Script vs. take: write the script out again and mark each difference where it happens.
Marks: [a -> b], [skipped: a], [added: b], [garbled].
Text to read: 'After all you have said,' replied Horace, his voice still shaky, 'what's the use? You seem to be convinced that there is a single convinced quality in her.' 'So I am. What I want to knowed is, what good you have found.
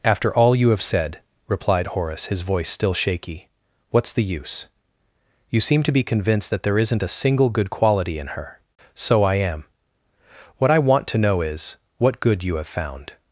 'After all you have said,' replied Horace, his voice still shaky, 'what's the use? You seem to be convinced that there [is -> isn't] a single [convinced -> good] quality in her.' 'So I am. What I want to [knowed -> know] is, what good you have found.